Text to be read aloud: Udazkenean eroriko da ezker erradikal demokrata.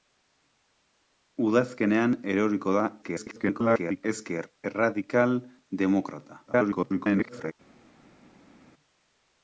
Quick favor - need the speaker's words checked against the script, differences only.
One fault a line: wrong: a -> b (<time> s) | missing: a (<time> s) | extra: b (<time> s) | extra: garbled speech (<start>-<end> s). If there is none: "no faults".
extra: garbled speech (3.0-4.0 s)
extra: garbled speech (6.5-7.5 s)